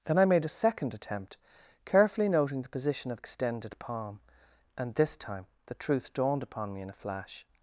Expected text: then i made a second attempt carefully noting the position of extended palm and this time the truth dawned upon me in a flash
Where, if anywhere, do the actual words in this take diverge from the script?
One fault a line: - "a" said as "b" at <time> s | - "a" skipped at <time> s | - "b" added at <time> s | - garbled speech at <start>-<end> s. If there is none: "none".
none